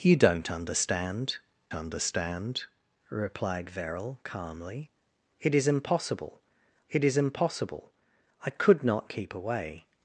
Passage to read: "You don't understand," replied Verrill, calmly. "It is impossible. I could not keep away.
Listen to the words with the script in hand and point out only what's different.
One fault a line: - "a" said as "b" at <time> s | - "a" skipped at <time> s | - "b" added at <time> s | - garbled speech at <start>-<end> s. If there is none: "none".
- "understand" added at 1.7 s
- "it is impossible" added at 6.9 s